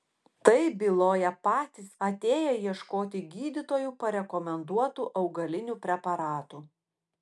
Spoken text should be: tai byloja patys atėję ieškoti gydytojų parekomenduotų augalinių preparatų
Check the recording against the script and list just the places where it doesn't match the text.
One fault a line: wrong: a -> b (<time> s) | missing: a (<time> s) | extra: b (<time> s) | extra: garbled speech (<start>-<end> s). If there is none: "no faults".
no faults